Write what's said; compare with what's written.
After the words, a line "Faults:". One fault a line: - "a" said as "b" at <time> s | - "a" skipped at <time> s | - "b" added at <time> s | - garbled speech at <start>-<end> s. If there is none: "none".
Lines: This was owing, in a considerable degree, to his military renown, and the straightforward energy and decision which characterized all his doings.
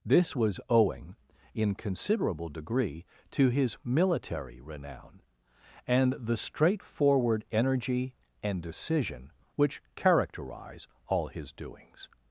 This was owing, in considerable degree, to his military renown, and the straightforward energy and decision which characterize all his doings.
Faults:
- "a" skipped at 1.7 s
- "characterized" said as "characterize" at 9.9 s